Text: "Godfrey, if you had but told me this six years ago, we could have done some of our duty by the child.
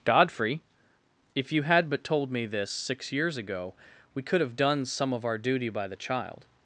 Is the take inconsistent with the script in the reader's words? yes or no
no